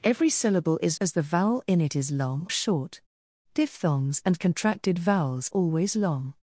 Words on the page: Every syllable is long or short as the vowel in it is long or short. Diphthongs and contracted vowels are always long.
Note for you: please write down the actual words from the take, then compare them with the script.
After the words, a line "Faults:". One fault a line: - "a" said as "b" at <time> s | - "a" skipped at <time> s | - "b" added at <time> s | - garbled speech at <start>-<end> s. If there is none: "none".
Every syllable is as the vowel in it is long short. Diphthongs and contracted vowels always long.
Faults:
- "long or short" skipped at 1.0 s
- "or" skipped at 2.5 s
- "are" skipped at 5.5 s